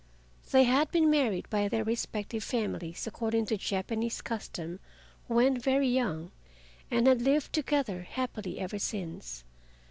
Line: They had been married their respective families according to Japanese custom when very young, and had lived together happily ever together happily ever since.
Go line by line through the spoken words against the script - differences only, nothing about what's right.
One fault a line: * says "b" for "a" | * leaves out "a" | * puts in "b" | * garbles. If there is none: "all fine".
* puts in "by"
* leaves out "together happily ever"